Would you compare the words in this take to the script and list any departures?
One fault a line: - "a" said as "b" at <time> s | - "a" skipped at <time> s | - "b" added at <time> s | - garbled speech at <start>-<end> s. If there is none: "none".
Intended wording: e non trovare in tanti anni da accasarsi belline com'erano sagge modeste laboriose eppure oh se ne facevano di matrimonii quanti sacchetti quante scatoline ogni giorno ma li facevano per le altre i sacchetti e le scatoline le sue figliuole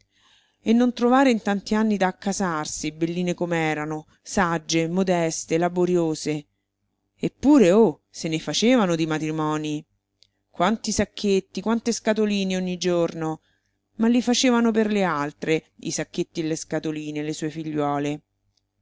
none